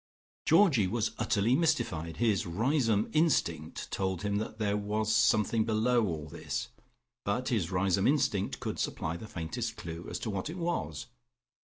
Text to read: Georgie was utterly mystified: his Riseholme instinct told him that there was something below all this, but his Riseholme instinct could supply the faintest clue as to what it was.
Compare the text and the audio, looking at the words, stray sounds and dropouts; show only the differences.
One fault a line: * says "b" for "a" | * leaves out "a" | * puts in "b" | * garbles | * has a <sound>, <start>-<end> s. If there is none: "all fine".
all fine